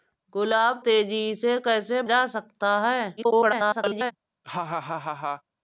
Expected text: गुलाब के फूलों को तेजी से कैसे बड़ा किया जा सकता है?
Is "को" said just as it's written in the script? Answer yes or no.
no